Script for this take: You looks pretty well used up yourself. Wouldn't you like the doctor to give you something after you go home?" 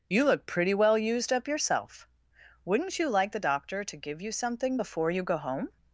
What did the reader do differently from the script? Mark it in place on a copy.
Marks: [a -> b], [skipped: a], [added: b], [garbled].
You [looks -> look] pretty well used up yourself. Wouldn't you like the doctor to give you something [after -> before] you go home?"